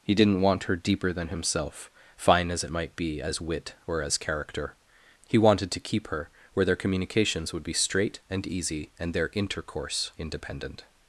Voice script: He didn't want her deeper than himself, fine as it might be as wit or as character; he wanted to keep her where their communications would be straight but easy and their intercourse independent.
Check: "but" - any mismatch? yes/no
yes